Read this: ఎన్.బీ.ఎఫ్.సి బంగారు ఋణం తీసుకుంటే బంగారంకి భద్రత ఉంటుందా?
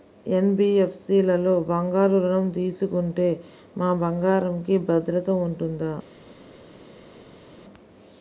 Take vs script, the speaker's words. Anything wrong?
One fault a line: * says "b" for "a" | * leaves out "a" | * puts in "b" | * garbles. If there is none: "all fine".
* puts in "లలో"
* puts in "మా"